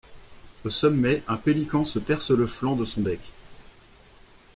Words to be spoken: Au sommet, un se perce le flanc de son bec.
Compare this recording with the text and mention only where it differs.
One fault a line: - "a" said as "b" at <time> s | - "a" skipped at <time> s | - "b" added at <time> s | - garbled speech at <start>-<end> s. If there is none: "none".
- "pélican" added at 1.4 s